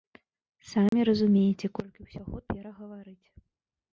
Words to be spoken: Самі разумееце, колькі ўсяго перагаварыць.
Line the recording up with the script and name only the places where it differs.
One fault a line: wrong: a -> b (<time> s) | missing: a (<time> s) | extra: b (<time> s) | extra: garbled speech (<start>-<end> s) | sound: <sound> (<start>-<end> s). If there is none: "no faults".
sound: dropout (0.9-0.9 s)